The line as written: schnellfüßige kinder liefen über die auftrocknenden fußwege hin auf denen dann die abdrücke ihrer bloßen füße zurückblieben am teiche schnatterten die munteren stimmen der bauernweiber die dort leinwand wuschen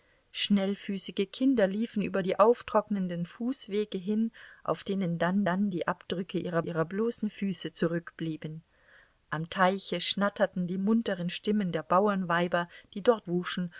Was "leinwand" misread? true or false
true